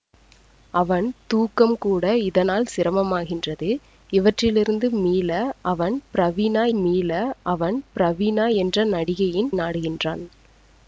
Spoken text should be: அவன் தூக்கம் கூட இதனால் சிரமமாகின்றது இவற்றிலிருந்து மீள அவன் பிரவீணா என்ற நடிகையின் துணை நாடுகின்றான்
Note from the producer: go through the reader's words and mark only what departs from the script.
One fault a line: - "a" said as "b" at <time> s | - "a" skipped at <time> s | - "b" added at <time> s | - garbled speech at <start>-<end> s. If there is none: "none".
- "மீள அவன் பிரவீணா" added at 6.8 s
- "துணை" skipped at 9.5 s